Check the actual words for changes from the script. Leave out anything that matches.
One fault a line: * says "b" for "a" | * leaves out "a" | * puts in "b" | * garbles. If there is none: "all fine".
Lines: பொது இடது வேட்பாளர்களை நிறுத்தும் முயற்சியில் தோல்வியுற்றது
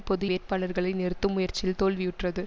* leaves out "இடது"